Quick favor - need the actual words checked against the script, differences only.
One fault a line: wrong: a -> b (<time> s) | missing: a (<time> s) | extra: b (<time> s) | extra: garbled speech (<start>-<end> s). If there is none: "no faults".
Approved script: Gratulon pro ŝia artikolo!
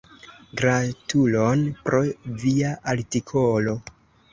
wrong: ŝia -> via (2.5 s)